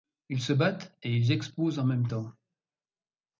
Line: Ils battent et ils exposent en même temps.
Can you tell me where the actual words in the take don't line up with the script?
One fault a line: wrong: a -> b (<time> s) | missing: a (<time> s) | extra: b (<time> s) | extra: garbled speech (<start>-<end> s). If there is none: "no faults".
extra: se (0.4 s)